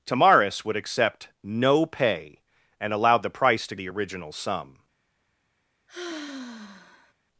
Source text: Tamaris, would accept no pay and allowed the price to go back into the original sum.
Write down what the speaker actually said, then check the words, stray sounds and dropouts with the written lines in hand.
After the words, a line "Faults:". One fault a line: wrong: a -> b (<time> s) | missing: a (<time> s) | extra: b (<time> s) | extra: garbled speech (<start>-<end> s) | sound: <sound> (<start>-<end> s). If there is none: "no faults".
Tamaris, would accept no pay and allowed the price to the original sum.
Faults:
missing: go back into (3.8 s)
sound: sigh (5.9-7.1 s)